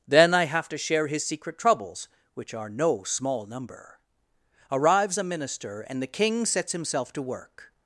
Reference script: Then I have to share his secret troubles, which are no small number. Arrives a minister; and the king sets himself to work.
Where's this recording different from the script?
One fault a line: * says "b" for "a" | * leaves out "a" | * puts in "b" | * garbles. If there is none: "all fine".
all fine